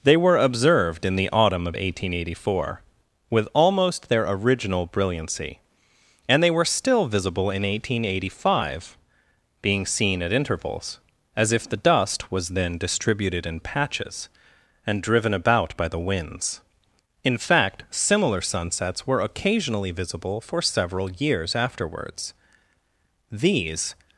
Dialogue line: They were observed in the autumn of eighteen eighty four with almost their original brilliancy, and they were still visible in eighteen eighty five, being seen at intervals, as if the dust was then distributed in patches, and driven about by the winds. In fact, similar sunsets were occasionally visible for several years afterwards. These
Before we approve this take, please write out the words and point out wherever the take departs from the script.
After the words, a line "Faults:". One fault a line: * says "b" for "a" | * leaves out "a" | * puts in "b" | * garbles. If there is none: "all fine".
They were observed in the autumn of eighteen eighty four with almost their original brilliancy, and they were still visible in eighteen eighty five, being seen at intervals, as if the dust was then distributed in patches, and driven about by the winds. In fact, similar sunsets were occasionally visible for several years afterwards. These
Faults:
all fine